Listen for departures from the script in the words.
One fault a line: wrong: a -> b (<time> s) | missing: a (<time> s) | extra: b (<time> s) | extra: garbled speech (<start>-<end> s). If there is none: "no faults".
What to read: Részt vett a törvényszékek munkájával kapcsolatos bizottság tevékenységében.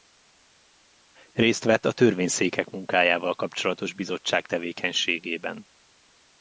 no faults